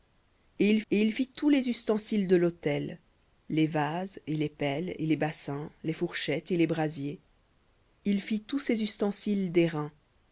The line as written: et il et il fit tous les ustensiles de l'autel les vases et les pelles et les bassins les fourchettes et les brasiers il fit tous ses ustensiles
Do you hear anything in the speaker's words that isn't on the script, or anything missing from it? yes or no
no